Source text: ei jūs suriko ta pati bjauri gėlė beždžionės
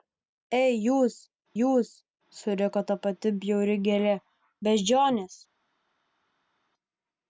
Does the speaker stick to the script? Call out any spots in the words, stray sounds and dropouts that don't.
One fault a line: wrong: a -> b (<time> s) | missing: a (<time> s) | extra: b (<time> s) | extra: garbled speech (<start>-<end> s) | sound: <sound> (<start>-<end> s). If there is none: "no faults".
extra: jūs (1.6 s)